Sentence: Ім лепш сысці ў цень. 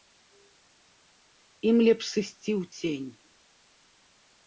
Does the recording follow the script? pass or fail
pass